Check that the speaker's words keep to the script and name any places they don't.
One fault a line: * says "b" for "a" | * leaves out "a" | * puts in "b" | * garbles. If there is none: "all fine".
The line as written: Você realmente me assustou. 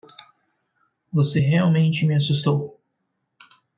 all fine